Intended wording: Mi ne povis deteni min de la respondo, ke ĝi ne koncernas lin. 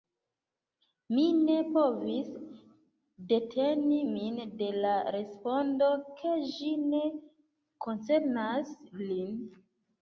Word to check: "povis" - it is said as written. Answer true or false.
true